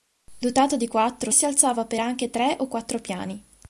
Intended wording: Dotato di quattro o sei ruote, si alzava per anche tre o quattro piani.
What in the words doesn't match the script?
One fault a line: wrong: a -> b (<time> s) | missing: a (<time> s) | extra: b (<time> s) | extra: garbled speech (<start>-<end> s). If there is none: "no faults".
missing: sei ruote (1.3 s)